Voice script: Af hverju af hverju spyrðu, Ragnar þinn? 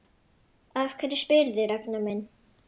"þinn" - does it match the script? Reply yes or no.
no